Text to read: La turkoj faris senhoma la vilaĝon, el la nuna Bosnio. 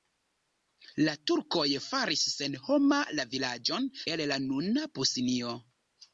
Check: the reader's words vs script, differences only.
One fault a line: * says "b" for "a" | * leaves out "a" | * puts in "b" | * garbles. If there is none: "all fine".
all fine